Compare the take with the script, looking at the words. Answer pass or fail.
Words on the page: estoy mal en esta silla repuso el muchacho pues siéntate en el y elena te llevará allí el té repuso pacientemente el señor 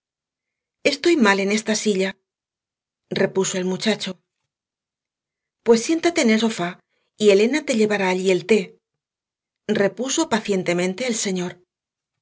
fail